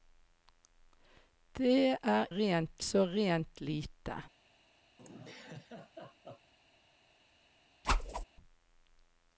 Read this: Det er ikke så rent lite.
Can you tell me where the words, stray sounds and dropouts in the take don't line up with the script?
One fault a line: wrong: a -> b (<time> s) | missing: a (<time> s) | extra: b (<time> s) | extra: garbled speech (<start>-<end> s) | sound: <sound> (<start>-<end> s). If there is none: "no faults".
wrong: ikke -> rent (2.3 s)
sound: laugh (5.0-6.5 s)
sound: whoosh (7.8-8.2 s)